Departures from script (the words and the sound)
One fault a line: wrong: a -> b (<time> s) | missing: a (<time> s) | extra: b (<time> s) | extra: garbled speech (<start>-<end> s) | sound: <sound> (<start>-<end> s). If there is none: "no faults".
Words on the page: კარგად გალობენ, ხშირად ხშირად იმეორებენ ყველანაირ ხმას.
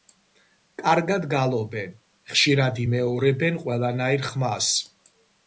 missing: ხშირად (2.8 s)